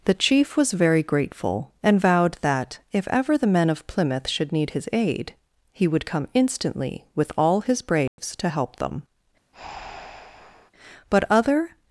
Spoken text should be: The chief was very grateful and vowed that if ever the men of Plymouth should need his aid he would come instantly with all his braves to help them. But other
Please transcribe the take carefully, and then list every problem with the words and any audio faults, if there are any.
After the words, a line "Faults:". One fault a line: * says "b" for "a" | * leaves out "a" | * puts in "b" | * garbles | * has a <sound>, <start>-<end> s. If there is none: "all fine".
The chief was very grateful and vowed that if ever the men of Plymouth should need his aid he would come instantly with all his braves to help them. But other
Faults:
* has a dropout, 8.1-8.2 s
* has a breath, 9.5-10.7 s